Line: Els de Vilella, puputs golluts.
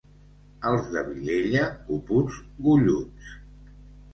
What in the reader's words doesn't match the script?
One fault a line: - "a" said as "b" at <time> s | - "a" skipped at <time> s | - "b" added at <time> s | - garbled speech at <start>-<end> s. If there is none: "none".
none